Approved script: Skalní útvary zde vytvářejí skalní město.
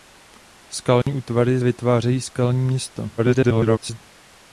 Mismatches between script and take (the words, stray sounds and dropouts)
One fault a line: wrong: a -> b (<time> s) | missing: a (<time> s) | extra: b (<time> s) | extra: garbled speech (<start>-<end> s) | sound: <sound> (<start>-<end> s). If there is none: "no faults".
sound: dropout (1.0-1.1 s)
missing: zde (1.6 s)
extra: garbled speech (3.2-4.0 s)